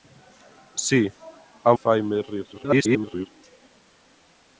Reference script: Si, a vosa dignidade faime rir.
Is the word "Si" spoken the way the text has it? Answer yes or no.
yes